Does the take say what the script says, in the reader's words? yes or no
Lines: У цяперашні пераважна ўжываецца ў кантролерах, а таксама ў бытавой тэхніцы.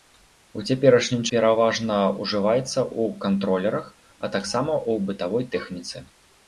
yes